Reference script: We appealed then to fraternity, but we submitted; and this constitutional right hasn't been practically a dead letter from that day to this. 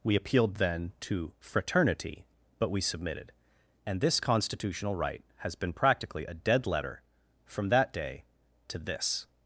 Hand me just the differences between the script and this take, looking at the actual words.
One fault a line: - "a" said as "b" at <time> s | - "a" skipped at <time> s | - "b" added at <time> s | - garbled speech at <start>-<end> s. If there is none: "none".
- "hasn't" said as "has" at 5.4 s